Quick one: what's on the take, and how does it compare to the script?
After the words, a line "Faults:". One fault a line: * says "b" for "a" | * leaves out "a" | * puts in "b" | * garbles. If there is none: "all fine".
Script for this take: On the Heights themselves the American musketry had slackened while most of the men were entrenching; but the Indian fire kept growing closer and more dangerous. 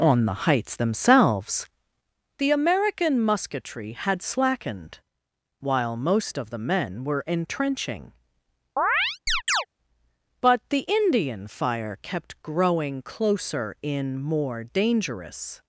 On the Heights themselves the American musketry had slackened while most of the men were entrenching; but the Indian fire kept growing closer in more dangerous.
Faults:
* says "in" for "and"